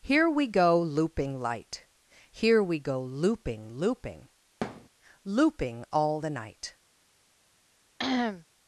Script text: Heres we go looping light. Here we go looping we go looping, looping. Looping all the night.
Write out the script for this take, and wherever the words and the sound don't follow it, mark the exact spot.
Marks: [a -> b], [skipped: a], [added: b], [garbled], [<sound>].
[Heres -> Here] we go looping light. Here we go looping [skipped: we go looping,] looping. [thud] Looping all the night. [cough]